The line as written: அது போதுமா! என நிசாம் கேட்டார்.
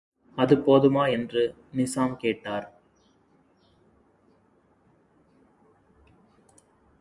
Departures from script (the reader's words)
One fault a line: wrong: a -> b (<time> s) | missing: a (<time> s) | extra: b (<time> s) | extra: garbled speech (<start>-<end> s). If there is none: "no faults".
wrong: என -> என்று (1.1 s)